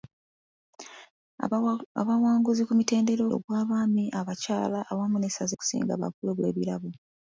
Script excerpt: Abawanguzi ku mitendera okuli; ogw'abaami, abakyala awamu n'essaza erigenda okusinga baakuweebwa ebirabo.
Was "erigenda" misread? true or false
true